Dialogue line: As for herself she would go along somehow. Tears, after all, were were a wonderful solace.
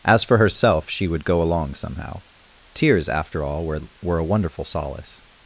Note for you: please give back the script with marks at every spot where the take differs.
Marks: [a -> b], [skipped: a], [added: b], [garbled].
As for herself she would go along somehow. Tears, after all, were were a wonderful solace.